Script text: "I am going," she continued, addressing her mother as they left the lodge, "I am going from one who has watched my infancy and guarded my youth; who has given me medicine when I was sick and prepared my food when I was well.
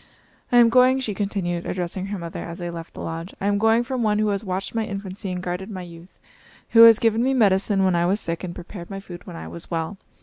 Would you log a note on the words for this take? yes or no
no